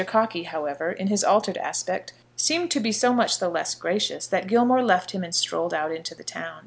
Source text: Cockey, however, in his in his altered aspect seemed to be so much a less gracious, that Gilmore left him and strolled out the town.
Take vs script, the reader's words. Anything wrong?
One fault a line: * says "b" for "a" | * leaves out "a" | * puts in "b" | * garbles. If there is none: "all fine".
* leaves out "in his"
* says "the" for "a"
* puts in "into"